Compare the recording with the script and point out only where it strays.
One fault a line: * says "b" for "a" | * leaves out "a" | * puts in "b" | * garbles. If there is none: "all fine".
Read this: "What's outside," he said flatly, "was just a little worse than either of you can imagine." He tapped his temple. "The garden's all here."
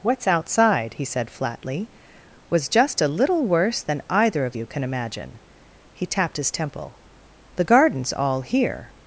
all fine